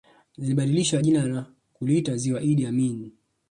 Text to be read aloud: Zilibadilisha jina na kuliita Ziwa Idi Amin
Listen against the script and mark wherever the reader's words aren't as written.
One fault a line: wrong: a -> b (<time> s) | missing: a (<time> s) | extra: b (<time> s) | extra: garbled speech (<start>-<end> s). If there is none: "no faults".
no faults